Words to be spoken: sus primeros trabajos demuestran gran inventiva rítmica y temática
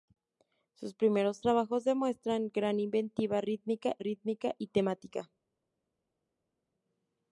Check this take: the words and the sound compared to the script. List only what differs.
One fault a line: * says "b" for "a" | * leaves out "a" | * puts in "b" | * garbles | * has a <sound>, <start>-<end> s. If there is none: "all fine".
* puts in "rítmica"